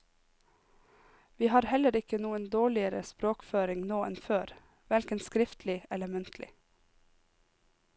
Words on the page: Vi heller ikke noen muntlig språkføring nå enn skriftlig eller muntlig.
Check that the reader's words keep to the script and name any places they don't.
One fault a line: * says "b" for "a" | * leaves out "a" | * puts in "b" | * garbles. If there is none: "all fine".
* puts in "har"
* says "dårligere" for "muntlig"
* puts in "før hverken"